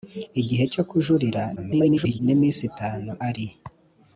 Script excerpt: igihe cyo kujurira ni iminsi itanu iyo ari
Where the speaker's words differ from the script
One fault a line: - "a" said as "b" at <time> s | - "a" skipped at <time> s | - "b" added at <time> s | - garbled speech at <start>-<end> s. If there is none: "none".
- garbled speech at 1.6-2.2 s
- "iyo" skipped at 3.1 s